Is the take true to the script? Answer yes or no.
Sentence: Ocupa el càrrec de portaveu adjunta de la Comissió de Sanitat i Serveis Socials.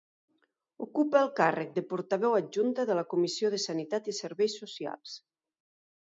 yes